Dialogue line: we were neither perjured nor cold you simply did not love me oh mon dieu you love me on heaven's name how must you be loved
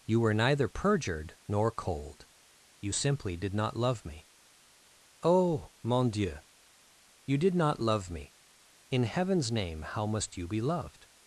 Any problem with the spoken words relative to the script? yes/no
yes